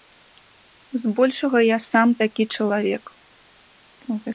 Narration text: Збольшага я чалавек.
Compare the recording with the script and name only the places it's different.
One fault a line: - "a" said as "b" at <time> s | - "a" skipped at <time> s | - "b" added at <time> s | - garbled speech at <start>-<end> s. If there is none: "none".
- "сам такі" added at 1.9 s